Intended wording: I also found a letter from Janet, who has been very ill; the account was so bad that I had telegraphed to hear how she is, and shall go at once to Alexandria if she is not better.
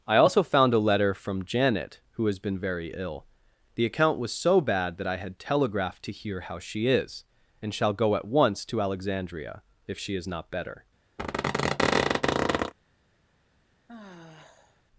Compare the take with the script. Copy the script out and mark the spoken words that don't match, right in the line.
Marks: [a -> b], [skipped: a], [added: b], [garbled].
I also found a letter from Janet, who has been very ill; the account was so bad that I had telegraphed to hear how she is, and shall go at once to Alexandria if she is not better.